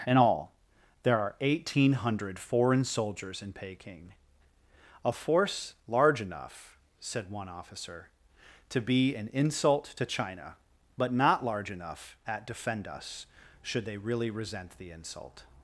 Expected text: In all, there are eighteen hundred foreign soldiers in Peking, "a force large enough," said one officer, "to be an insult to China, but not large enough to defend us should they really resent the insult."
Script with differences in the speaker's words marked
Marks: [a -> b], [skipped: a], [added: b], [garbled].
In all, there are eighteen hundred foreign soldiers in Peking, "a force large enough," said one officer, "to be an insult to China, but not large enough [to -> at] defend us should they really resent the insult."